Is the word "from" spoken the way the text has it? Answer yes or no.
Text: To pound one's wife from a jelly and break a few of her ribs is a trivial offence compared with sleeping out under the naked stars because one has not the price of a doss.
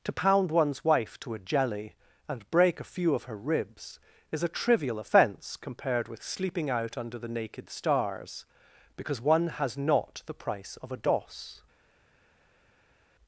no